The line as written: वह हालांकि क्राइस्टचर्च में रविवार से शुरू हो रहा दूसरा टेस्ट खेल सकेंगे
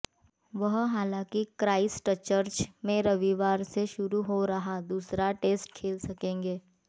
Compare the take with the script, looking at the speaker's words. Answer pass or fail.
pass